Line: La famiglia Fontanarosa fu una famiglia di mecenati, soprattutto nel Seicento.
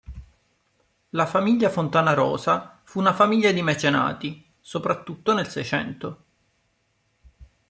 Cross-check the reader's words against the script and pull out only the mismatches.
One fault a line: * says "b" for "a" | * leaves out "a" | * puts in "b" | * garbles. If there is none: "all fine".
all fine